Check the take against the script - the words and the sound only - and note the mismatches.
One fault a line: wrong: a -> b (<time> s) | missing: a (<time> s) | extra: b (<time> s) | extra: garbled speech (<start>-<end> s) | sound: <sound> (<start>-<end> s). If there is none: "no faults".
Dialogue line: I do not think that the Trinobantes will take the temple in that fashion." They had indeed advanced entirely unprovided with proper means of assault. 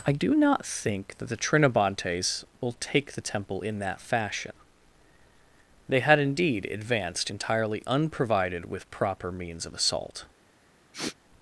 sound: sniff (10.9-11.2 s)